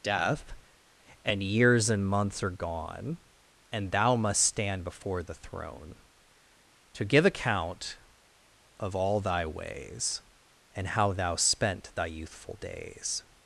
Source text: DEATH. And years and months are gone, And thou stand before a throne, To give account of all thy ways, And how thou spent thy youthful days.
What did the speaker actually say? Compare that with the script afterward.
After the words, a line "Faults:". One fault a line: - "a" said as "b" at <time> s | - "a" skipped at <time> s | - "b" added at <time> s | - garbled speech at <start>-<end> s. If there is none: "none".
DEATH. And years and months are gone, And thou must stand before the throne, To give account of all thy ways, And how thou spent thy youthful days.
Faults:
- "must" added at 4.2 s
- "a" said as "the" at 5.2 s